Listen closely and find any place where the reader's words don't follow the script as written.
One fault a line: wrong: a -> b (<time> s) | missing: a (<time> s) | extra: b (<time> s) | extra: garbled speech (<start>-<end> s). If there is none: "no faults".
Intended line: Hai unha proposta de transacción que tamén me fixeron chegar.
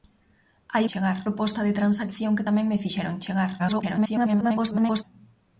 wrong: unha -> chegar (0.9 s)
extra: garbled speech (3.6-5.0 s)